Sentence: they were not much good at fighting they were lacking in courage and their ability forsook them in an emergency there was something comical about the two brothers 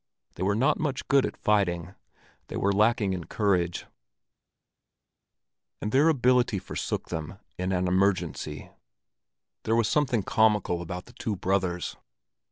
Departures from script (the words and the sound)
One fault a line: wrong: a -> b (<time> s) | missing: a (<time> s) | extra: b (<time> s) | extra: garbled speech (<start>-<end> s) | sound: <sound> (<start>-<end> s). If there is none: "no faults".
no faults